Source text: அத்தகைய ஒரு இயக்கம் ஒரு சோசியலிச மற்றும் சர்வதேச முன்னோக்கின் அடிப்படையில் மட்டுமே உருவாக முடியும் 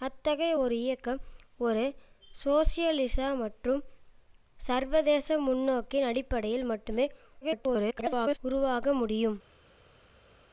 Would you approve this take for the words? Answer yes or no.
no